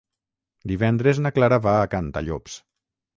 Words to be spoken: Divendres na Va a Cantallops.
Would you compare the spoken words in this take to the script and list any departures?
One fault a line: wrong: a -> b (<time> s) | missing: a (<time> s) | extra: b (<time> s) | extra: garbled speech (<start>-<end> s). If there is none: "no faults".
extra: Clara (1.4 s)